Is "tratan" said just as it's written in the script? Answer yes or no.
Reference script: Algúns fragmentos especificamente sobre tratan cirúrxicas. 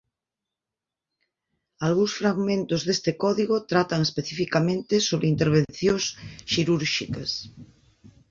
no